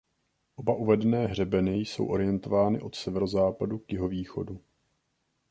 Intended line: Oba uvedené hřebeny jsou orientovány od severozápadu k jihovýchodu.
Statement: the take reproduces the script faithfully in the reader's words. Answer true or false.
true